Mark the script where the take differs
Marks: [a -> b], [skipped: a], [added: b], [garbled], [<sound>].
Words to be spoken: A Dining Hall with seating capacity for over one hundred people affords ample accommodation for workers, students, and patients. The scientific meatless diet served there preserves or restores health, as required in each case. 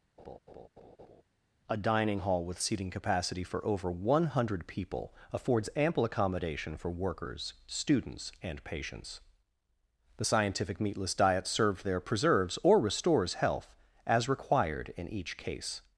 [laugh] A Dining Hall with seating capacity for over one hundred people affords ample accommodation for workers, students, and patients. The scientific meatless diet served there preserves or restores health, as required in each case.